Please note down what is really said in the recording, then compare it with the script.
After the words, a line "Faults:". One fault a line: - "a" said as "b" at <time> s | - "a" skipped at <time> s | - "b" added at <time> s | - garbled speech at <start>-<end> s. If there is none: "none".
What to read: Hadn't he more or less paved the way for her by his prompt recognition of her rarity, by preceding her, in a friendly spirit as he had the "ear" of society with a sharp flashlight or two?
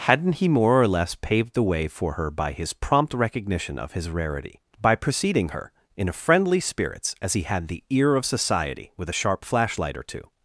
Hadn't he more or less paved the way for her by his prompt recognition of his rarity, by preceding her, in a friendly spirits as he had the "ear" of society with a sharp flashlight or two?
Faults:
- "her" said as "his" at 3.9 s
- "spirit" said as "spirits" at 6.6 s